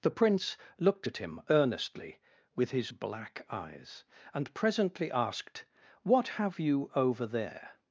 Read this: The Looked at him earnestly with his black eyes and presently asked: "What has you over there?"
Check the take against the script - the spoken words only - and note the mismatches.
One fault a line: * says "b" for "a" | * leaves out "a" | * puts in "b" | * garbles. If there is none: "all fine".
* puts in "Prince"
* says "have" for "has"